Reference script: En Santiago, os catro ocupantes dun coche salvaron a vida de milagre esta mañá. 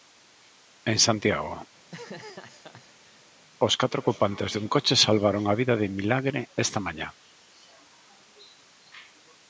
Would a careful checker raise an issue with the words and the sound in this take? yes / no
yes